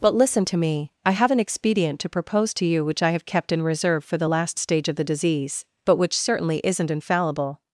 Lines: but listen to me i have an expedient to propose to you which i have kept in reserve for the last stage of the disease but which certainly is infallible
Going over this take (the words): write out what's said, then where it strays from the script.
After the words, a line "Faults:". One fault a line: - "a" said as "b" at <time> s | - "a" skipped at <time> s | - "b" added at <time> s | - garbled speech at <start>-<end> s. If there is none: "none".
but listen to me i have an expedient to propose to you which i have kept in reserve for the last stage of the disease but which certainly isn't infallible
Faults:
- "is" said as "isn't" at 6.6 s